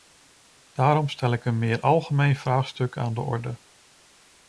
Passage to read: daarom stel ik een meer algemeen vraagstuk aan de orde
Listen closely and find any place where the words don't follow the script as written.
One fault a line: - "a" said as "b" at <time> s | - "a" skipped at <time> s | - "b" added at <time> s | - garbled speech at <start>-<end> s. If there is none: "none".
none